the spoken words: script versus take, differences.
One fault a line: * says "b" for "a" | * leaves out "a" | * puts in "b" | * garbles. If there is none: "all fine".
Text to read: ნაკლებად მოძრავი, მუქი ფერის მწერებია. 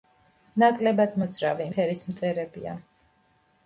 * leaves out "მუქი"